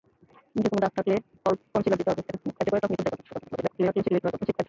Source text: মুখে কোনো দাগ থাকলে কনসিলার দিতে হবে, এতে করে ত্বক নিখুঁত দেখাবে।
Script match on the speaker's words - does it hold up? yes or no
no